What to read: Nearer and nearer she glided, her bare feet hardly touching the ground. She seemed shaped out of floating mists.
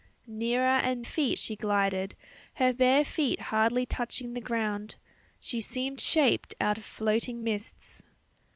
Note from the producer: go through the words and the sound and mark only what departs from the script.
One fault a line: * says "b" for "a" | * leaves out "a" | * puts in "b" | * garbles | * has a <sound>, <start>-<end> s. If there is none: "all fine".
* says "feet" for "nearer"